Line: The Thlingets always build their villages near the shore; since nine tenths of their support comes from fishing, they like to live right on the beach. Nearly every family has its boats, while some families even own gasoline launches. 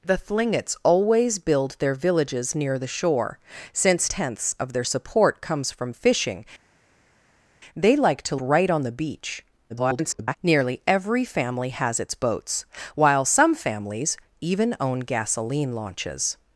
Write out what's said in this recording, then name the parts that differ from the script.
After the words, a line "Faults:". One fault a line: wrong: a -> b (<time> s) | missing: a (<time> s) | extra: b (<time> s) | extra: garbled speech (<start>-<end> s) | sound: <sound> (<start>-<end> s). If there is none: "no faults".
The Thlingets always build their villages near the shore; since tenths of their support comes from fishing, they like to right on the beach. [garbled] Nearly every family has its boats, while some families even own gasoline launches.
Faults:
missing: nine (4.1 s)
missing: live (8.4 s)
extra: garbled speech (9.7-10.4 s)